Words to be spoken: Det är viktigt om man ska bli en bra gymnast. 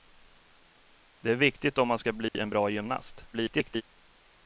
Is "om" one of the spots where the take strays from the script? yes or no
no